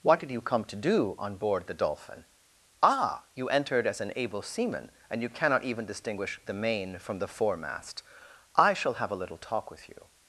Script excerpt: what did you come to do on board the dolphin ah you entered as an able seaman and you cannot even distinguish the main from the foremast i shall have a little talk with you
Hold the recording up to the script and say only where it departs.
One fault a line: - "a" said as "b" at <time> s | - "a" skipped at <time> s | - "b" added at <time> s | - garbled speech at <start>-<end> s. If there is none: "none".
none